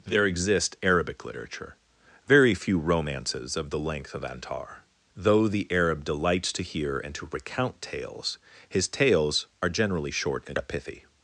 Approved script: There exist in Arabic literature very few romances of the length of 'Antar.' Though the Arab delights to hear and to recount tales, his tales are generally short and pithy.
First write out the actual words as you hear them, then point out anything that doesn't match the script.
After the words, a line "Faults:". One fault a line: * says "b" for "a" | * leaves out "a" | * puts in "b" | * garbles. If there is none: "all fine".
There exist Arabic literature very few romances of the length of 'Antar.' Though the Arab delights to hear and to recount tales, his tales are generally short and pithy.
Faults:
* leaves out "in"